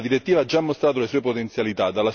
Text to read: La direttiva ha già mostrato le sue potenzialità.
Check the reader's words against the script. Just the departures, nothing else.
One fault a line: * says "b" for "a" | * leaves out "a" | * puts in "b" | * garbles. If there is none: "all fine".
all fine